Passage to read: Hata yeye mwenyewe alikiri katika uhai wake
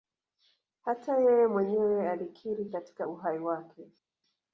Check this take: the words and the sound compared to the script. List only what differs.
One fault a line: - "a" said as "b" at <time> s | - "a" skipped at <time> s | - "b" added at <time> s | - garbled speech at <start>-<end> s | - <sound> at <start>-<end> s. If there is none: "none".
none